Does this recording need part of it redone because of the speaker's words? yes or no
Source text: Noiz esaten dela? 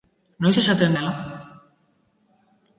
no